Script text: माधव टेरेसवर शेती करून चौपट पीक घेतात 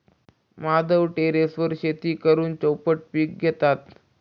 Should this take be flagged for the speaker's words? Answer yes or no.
no